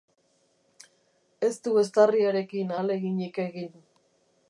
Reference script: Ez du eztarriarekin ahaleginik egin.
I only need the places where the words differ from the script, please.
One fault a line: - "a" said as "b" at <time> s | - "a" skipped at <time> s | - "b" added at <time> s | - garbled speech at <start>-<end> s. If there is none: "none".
none